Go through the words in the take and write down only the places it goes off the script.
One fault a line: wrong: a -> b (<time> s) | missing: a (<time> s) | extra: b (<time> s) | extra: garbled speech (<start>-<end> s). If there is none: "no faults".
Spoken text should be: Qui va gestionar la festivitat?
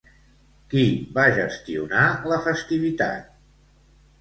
no faults